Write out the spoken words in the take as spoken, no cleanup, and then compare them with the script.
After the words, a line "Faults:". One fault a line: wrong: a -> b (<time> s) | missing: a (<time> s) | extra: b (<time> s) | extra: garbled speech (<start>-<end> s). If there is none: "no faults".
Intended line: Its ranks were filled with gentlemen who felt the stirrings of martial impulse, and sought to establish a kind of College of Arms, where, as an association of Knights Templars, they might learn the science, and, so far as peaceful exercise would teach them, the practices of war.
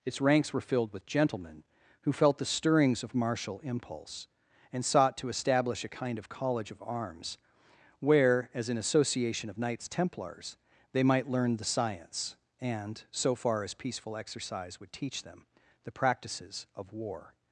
Its ranks were filled with gentlemen who felt the stirrings of martial impulse, and sought to establish a kind of College of Arms, where, as an association of Knights Templars, they might learn the science, and, so far as peaceful exercise would teach them, the practices of war.
Faults:
no faults